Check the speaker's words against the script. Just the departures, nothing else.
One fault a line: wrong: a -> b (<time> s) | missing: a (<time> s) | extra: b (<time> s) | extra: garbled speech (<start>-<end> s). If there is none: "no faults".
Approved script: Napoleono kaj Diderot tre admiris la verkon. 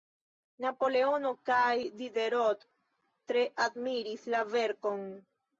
no faults